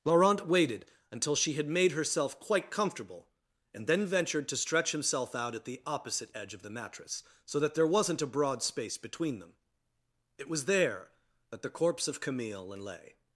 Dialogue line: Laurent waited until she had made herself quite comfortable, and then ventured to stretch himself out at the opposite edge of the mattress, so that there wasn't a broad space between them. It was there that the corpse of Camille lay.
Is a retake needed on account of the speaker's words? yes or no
no